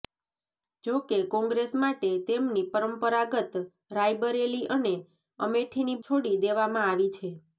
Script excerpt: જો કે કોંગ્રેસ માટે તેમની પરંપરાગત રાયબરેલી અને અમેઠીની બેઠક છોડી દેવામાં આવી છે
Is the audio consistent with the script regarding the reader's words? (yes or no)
no